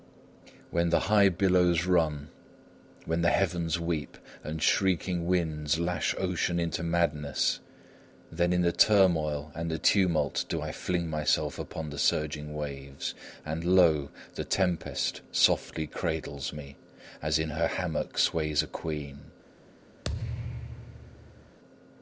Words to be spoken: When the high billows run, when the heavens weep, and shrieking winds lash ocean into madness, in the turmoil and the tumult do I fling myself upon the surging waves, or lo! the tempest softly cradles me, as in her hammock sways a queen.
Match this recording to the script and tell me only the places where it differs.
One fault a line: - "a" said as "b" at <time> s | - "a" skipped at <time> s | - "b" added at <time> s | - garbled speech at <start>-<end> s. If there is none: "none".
- "then" added at 8.3 s
- "or" said as "and" at 13.4 s